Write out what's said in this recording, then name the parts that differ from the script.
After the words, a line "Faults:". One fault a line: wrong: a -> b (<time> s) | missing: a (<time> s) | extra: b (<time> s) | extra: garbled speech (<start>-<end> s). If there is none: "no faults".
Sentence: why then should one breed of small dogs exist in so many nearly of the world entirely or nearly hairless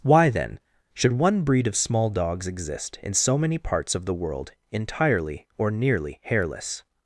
why then should one breed of small dogs exist in so many parts of the world entirely or nearly hairless
Faults:
wrong: nearly -> parts (3.6 s)